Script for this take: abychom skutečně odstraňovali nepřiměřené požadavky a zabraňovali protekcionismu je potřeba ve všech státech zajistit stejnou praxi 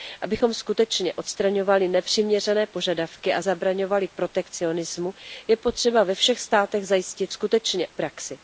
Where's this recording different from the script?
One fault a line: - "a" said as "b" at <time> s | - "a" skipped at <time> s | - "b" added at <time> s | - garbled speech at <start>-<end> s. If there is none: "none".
- "stejnou" said as "skutečně" at 7.3 s